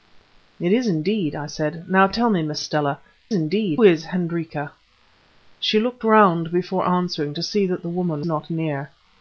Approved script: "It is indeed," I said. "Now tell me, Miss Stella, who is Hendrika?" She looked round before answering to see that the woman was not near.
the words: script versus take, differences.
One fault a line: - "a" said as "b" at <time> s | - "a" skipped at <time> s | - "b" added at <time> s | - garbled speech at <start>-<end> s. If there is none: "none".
- "who" said as "indeed" at 3.3 s
- "was" skipped at 8.3 s